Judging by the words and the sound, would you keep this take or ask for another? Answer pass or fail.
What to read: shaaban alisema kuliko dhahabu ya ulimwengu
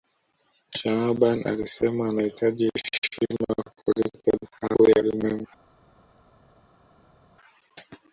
fail